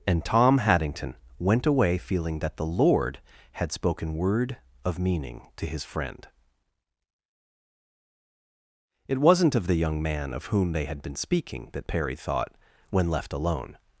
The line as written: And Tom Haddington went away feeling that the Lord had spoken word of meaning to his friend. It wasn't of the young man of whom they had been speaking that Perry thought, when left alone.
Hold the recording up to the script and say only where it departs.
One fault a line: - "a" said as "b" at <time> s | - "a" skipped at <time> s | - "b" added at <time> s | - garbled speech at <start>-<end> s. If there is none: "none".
none